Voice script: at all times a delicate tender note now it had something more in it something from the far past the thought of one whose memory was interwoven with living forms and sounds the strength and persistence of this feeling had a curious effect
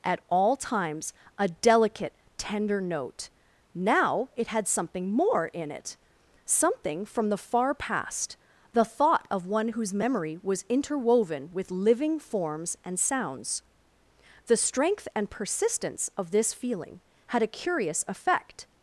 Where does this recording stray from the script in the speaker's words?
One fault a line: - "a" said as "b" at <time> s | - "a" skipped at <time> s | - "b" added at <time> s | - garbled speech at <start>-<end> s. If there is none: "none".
none